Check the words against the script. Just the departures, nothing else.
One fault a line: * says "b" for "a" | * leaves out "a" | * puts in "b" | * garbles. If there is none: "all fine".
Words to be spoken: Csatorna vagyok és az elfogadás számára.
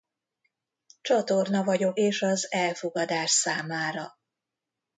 all fine